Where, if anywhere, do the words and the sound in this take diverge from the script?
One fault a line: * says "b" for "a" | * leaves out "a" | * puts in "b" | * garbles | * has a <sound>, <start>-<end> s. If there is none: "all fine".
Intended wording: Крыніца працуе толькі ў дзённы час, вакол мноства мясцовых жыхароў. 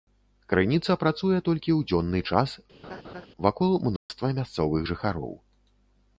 * has a laugh, 2.8-3.3 s
* has a dropout, 4.0-4.1 s